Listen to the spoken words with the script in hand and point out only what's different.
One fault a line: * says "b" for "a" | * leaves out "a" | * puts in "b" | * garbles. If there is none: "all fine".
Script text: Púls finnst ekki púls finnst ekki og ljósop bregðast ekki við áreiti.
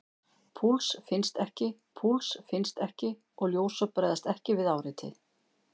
all fine